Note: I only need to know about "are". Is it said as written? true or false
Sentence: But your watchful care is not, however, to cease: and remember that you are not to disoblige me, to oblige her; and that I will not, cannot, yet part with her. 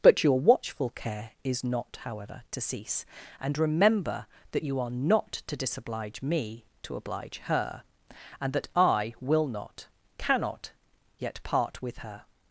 true